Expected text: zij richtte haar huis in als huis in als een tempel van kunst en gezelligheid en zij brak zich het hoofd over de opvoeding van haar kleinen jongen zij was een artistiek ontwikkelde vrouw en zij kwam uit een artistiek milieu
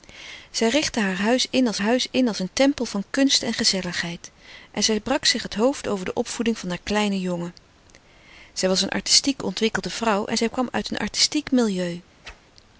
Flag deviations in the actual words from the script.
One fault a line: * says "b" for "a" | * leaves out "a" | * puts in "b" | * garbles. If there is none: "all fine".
all fine